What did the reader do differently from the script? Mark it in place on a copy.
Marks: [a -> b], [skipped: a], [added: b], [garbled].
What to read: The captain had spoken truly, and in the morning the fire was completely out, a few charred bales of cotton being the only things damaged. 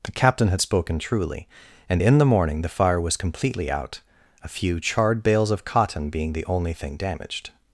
The captain had spoken truly, and in the morning the fire was completely out, a few charred bales of cotton being the only [things -> thing] damaged.